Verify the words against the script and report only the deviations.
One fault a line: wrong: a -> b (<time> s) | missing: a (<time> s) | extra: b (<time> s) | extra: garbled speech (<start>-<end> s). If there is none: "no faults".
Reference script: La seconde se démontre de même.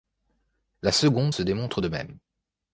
no faults